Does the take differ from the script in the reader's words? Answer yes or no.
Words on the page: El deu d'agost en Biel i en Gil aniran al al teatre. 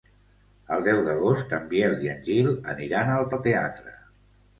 no